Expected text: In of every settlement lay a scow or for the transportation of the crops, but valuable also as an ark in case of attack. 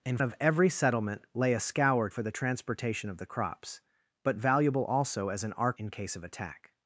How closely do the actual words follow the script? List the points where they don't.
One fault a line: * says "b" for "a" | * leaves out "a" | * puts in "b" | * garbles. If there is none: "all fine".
all fine